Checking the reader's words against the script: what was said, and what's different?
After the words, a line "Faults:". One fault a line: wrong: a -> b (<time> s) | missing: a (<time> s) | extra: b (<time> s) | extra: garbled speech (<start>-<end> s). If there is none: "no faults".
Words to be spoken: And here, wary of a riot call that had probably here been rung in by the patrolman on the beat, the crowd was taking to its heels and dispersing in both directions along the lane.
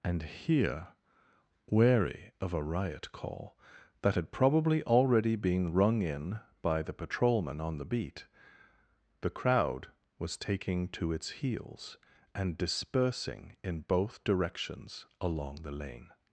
And here, wary of a riot call that had probably already been rung in by the patrolman on the beat, the crowd was taking to its heels and dispersing in both directions along the lane.
Faults:
wrong: here -> already (4.8 s)